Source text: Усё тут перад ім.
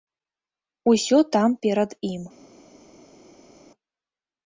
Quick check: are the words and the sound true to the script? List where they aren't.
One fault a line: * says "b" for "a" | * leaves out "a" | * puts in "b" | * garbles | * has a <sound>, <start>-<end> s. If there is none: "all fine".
* says "там" for "тут"